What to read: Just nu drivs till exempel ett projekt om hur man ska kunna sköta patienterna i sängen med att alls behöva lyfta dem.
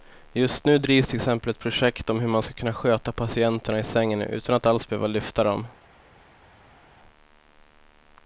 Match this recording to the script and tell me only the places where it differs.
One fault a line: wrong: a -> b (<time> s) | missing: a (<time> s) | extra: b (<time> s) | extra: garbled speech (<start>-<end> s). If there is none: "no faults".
wrong: med -> utan (4.2 s)